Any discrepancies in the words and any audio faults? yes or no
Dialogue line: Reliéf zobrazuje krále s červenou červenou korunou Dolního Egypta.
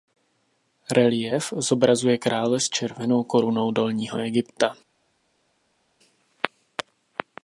yes